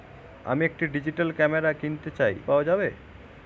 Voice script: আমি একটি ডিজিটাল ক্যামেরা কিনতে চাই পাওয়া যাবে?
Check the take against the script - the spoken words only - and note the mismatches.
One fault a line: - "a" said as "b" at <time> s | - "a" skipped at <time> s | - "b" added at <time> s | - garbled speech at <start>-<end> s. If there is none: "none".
none